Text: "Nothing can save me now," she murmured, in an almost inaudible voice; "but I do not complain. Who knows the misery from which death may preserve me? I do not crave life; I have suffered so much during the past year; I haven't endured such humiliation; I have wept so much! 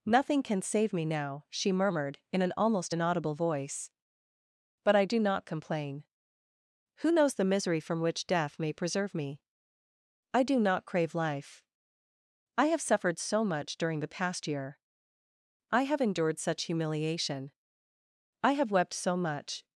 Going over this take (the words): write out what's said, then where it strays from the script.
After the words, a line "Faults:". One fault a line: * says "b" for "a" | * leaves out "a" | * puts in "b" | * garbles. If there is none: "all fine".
"Nothing can save me now," she murmured, in an almost inaudible voice; "but I do not complain. Who knows the misery from which death may preserve me? I do not crave life; I have suffered so much during the past year; I have endured such humiliation; I have wept so much!
Faults:
* says "have" for "haven't"